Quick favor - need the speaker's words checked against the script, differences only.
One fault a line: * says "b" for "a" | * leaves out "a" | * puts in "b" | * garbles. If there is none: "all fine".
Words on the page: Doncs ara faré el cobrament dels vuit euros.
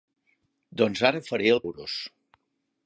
* leaves out "cobrament dels vuit"